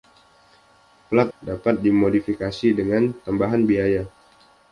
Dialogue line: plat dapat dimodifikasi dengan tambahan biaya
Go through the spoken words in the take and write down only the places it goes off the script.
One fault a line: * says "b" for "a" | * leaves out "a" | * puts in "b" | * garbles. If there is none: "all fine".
all fine